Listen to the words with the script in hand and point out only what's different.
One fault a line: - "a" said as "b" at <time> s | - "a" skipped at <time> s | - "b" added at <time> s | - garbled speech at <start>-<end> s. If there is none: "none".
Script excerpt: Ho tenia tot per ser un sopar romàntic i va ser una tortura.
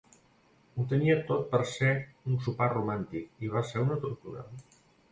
none